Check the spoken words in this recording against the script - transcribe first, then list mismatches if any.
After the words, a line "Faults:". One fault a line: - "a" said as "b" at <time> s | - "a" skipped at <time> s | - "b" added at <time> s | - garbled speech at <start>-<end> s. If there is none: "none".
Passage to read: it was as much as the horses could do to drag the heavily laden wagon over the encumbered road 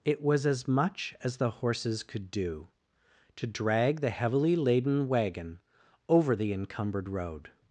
it was as much as the horses could do to drag the heavily laden wagon over the encumbered road
Faults:
none